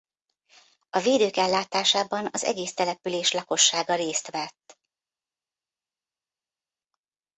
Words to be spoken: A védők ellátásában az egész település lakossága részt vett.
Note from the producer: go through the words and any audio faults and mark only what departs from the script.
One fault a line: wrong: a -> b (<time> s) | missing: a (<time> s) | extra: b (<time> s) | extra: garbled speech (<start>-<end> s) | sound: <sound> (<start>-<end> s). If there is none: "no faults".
no faults